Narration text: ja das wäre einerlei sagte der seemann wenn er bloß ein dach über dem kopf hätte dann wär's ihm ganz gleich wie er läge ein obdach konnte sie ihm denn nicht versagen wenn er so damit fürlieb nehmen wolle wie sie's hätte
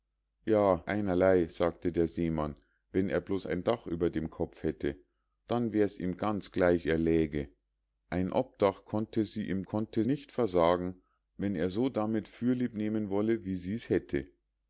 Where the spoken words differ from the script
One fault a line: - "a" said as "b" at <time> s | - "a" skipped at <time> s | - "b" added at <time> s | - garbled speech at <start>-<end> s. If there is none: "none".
- "das wäre" skipped at 0.8 s
- "wie" skipped at 6.9 s
- "denn" said as "konnte" at 9.7 s